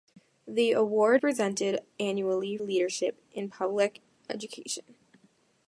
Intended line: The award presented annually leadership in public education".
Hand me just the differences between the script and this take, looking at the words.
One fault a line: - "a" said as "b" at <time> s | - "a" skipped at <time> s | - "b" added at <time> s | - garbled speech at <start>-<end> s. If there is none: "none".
none